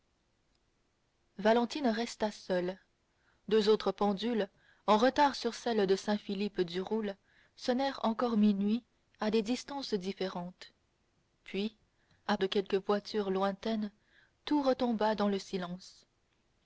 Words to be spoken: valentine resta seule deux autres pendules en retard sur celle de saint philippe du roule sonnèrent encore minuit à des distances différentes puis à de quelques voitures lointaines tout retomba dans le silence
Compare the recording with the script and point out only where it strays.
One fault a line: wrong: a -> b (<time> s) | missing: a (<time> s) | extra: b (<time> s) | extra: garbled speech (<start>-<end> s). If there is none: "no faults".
no faults